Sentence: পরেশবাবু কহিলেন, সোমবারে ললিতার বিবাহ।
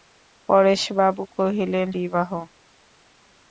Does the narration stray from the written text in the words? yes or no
yes